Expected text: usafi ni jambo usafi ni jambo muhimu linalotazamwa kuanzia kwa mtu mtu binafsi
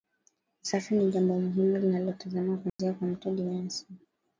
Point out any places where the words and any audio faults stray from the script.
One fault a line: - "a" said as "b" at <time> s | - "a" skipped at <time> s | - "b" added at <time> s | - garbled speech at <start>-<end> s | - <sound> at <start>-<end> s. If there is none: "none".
- "usafi ni jambo" skipped at 1.4 s
- dropout at 2.7-2.8 s
- "mtu" skipped at 3.3 s